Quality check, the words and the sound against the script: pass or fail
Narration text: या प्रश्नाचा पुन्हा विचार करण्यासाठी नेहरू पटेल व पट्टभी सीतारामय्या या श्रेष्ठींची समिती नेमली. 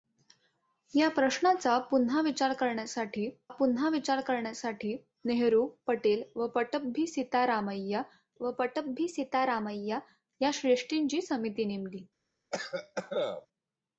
fail